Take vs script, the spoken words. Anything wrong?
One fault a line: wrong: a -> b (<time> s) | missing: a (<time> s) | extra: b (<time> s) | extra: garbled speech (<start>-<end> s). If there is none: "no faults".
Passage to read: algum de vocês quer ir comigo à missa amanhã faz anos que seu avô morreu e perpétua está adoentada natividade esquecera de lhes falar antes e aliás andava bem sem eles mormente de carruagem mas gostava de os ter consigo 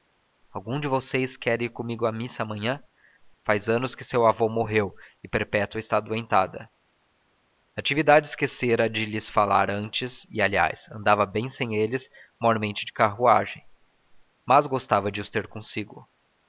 no faults